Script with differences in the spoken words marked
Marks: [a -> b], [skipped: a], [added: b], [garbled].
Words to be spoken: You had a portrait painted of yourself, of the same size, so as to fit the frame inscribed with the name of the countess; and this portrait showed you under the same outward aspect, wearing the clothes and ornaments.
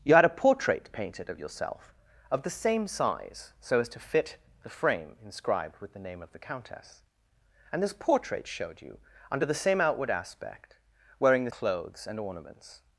You had a portrait painted of yourself, of the same size, so as to fit the frame inscribed with the name of the countess; and this portrait showed you under the same outward aspect, wearing the clothes and ornaments.